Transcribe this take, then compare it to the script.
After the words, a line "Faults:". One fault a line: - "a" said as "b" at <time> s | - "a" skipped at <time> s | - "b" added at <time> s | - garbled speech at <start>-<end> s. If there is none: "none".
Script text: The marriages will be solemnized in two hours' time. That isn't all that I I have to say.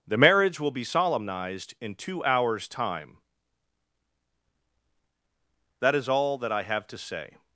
The marriage will be solemnized in two hours' time. That is all that I have to say.
Faults:
- "marriages" said as "marriage" at 0.2 s
- "isn't" said as "is" at 6.0 s
- "I" skipped at 6.6 s